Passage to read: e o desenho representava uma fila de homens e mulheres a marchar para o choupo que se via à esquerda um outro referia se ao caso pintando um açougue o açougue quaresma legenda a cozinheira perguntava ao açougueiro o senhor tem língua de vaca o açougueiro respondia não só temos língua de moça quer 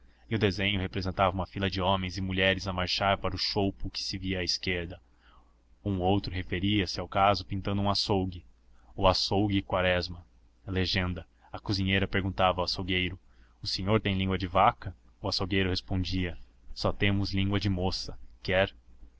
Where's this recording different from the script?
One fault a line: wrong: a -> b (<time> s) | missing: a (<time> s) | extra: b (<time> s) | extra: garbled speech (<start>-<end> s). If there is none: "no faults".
missing: não (16.4 s)